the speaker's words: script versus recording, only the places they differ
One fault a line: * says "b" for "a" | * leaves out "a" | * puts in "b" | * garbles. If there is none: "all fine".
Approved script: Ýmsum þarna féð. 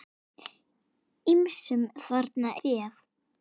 all fine